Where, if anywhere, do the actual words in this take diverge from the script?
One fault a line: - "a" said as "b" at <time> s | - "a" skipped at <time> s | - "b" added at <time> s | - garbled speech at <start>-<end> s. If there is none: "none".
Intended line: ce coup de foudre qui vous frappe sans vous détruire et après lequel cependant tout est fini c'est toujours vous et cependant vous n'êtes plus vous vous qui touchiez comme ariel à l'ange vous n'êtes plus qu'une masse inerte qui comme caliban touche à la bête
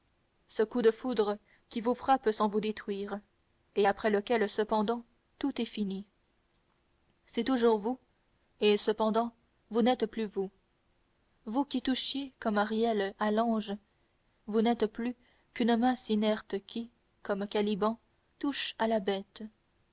none